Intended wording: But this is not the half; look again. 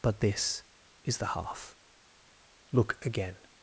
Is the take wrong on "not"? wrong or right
wrong